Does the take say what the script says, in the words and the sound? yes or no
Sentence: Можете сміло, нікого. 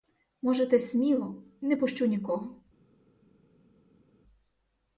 no